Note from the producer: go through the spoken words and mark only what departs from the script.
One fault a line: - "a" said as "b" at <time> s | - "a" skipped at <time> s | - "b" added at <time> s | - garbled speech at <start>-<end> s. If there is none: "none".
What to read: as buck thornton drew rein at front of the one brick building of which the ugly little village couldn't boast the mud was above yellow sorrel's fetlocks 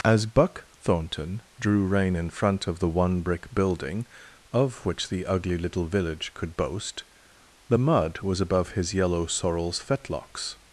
- "at" said as "in" at 2.1 s
- "couldn't" said as "could" at 6.3 s
- "his" added at 8.7 s